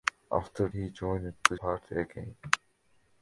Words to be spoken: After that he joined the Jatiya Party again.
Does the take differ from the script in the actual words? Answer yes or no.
yes